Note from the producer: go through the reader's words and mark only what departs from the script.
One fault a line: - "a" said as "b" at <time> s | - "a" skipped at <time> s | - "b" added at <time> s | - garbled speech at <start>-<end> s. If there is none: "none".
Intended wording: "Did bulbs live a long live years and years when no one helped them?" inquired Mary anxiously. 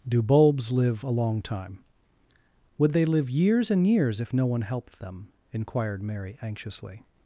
- "Did" said as "Do" at 0.1 s
- "time Would they" added at 1.4 s
- "when" said as "if" at 4.2 s